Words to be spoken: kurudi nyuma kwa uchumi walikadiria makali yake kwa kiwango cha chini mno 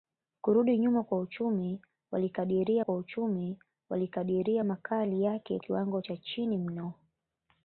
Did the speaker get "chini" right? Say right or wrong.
right